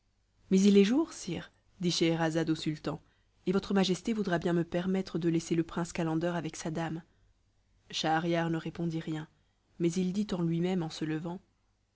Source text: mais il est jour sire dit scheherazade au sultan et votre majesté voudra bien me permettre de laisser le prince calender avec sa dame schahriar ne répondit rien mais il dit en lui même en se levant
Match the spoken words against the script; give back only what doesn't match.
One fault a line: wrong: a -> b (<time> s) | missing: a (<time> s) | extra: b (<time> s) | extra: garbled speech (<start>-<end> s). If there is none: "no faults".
no faults